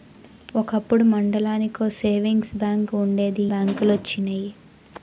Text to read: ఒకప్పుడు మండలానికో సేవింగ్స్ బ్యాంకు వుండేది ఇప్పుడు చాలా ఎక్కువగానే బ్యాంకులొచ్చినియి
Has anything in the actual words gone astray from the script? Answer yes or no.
yes